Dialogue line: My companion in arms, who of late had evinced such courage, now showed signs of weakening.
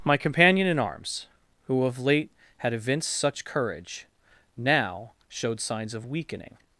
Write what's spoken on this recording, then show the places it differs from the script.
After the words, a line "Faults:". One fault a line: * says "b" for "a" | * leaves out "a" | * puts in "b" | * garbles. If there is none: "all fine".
My companion in arms, who of late had evinced such courage, now showed signs of weakening.
Faults:
all fine